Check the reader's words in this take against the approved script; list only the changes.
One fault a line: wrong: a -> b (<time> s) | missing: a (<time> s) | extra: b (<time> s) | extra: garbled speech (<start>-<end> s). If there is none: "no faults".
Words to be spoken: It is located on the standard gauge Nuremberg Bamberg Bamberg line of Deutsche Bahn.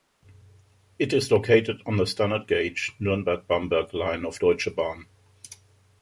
missing: Bamberg (3.9 s)